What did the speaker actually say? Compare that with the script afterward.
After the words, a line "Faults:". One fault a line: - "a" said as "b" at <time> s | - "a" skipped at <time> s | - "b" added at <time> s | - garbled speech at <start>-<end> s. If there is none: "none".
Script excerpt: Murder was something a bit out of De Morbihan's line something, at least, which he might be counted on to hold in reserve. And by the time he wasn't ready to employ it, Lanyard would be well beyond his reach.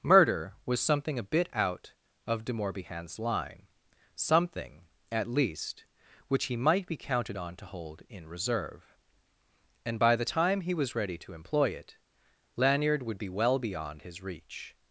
Murder was something a bit out of De Morbihan's line something, at least, which he might be counted on to hold in reserve. And by the time he was ready to employ it, Lanyard would be well beyond his reach.
Faults:
- "wasn't" said as "was" at 10.7 s